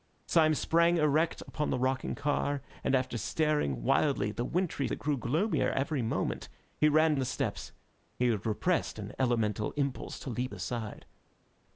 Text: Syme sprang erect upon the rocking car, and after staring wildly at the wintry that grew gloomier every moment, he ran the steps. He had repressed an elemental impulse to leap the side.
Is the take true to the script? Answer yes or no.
yes